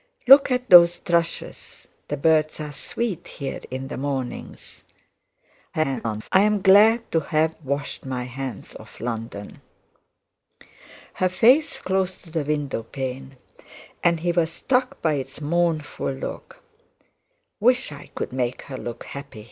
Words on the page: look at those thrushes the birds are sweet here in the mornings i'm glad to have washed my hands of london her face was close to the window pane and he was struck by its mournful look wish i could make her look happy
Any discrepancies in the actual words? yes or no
yes